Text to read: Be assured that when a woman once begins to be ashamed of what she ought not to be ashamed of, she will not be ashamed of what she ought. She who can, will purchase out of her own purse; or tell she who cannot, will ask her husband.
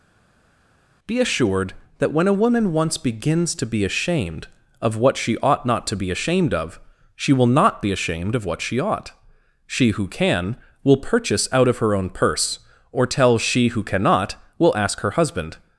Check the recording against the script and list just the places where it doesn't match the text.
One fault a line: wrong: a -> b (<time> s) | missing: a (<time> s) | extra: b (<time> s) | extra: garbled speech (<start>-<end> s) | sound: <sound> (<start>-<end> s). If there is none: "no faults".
no faults